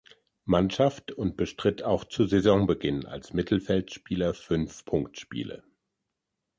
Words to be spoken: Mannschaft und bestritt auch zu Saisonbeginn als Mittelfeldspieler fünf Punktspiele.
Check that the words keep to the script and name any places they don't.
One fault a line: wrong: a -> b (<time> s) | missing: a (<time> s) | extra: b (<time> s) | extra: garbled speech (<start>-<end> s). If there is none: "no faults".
no faults